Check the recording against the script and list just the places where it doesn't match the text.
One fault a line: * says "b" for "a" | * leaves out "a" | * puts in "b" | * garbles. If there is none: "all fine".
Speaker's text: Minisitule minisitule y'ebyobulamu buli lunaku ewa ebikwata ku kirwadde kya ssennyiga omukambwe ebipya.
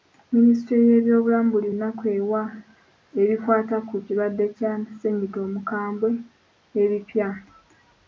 * leaves out "minisitule"